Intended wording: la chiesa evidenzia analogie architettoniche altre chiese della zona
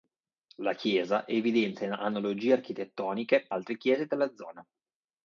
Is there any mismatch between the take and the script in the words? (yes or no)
no